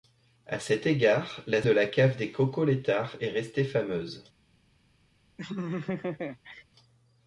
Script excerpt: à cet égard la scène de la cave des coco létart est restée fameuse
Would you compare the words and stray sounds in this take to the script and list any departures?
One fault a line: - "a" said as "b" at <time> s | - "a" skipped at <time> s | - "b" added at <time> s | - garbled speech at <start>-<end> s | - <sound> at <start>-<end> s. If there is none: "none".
- "scène" skipped at 1.6 s
- laugh at 5.4-6.6 s